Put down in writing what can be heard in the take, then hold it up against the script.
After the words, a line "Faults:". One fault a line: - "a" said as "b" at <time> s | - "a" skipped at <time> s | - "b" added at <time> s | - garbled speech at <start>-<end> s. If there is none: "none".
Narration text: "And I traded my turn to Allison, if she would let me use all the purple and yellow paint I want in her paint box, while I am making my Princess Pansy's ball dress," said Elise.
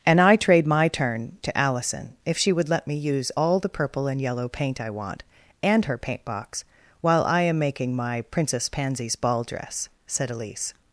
"And I trade my turn to Allison, if she would let me use all the purple and yellow paint I want and her paint box, while I am making my Princess Pansy's ball dress," said Elise.
Faults:
- "traded" said as "trade" at 0.3 s
- "in" said as "and" at 5.6 s